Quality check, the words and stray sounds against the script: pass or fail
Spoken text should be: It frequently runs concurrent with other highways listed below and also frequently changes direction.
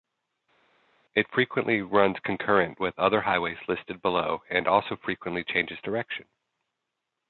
pass